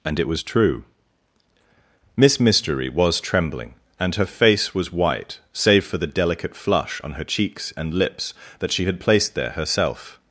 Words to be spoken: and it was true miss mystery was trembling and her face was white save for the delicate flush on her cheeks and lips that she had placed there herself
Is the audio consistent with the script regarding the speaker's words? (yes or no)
yes